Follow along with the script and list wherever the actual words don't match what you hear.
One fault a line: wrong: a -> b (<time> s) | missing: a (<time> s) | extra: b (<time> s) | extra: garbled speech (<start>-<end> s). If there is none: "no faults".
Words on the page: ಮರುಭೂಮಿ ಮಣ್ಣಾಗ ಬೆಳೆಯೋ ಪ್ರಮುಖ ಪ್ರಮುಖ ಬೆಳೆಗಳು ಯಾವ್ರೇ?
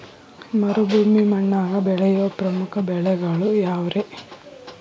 missing: ಪ್ರಮುಖ (2.8 s)